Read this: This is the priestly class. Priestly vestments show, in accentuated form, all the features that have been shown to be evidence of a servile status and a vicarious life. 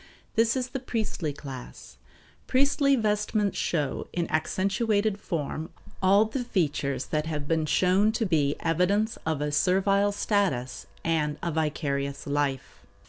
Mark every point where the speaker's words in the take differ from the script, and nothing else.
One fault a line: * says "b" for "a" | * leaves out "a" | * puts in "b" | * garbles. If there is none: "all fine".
all fine